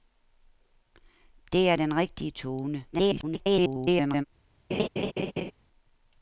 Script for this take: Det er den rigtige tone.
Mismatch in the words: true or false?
true